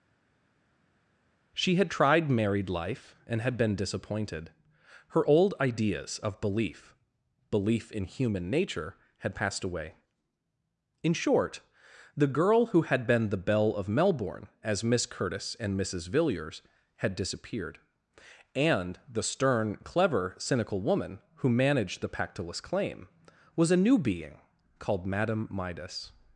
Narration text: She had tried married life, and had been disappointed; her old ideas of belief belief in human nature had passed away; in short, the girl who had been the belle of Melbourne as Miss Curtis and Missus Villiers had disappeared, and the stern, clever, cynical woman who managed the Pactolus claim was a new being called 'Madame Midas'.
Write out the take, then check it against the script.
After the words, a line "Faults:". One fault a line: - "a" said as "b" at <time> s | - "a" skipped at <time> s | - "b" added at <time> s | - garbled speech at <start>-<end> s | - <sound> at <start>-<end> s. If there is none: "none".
She had tried married life, and had been disappointed; her old ideas of belief belief in human nature had passed away; in short, the girl who had been the belle of Melbourne as Miss Curtis and Missus Villiers had disappeared, and the stern, clever, cynical woman who managed the Pactolus claim was a new being called 'Madame Midas'.
Faults:
none